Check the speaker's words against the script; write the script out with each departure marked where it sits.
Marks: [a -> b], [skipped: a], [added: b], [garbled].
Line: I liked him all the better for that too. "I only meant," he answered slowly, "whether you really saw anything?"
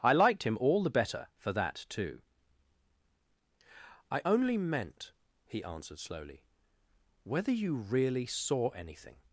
I liked him all the better for that too. "I only meant," he answered slowly, "whether you really saw anything?"